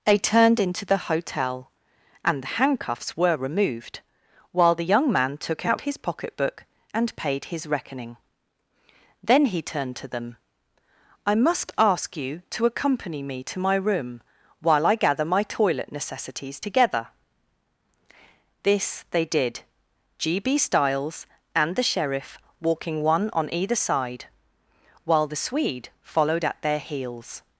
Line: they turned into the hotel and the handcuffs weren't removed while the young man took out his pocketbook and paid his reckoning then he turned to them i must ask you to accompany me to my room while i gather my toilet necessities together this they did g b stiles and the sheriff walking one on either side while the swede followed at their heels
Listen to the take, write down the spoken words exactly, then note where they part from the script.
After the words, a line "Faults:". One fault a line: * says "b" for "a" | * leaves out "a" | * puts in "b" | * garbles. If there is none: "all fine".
they turned into the hotel and the handcuffs were removed while the young man took out his pocketbook and paid his reckoning then he turned to them i must ask you to accompany me to my room while i gather my toilet necessities together this they did g b stiles and the sheriff walking one on either side while the swede followed at their heels
Faults:
* says "were" for "weren't"